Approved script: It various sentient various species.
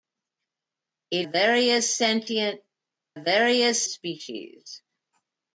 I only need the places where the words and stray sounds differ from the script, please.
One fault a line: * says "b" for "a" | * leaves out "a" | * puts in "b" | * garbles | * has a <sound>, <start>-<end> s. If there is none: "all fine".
all fine